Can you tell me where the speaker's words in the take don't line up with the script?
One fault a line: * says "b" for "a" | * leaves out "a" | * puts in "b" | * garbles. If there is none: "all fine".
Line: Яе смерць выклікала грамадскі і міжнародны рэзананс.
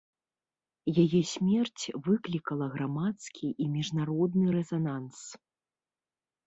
all fine